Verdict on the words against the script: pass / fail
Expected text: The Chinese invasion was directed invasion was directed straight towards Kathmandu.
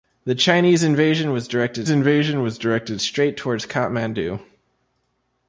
pass